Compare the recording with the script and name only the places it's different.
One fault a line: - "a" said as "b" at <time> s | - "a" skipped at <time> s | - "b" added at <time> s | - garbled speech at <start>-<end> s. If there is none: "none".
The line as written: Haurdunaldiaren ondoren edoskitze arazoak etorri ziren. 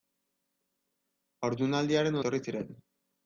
- "ondoren edoskitze arazoak" skipped at 2.2 s